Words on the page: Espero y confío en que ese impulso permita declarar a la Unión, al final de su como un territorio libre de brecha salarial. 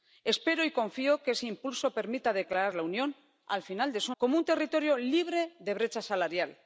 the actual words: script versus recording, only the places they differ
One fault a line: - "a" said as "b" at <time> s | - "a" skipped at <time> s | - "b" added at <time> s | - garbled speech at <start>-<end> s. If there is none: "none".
none